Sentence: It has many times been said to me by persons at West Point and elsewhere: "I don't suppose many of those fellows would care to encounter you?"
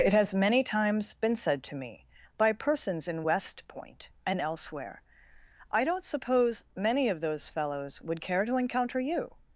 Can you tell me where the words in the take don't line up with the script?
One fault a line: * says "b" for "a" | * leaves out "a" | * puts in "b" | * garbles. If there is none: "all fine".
* says "in" for "at"